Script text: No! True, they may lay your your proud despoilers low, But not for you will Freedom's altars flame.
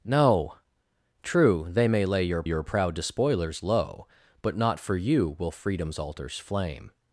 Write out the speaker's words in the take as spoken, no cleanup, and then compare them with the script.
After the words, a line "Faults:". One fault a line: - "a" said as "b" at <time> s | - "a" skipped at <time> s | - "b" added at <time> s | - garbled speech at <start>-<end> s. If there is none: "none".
No! True, they may lay your your proud despoilers low, But not for you will Freedom's altars flame.
Faults:
none